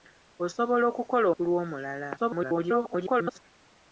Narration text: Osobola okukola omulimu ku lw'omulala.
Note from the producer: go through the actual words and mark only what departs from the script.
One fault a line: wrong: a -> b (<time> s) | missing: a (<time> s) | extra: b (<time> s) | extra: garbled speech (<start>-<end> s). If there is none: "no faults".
missing: omulimu (1.3 s)
extra: garbled speech (2.2-3.4 s)